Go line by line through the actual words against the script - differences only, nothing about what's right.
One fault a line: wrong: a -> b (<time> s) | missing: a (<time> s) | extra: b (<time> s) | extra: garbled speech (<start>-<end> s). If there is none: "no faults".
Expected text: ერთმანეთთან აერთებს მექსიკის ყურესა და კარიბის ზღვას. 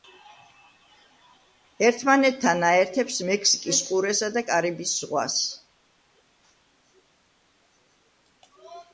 no faults